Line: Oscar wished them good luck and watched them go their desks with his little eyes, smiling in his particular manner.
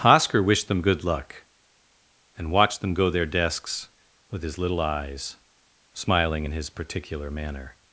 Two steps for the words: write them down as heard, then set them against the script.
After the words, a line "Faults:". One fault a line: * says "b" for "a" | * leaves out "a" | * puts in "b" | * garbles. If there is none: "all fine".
Oscar wished them good luck and watched them go their desks with his little eyes, smiling in his particular manner.
Faults:
all fine